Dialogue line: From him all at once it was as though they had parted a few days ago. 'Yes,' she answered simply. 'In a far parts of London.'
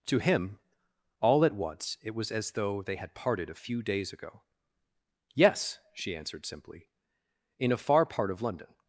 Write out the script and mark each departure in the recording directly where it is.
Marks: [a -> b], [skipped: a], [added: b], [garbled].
[From -> To] him all at once it was as though they had parted a few days ago. 'Yes,' she answered simply. 'In a far [parts -> part] of London.'